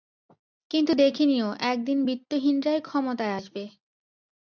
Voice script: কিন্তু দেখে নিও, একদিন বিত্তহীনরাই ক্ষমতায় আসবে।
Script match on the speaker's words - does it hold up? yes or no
yes